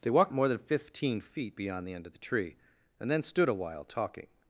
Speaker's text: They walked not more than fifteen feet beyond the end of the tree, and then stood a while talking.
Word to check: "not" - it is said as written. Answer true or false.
false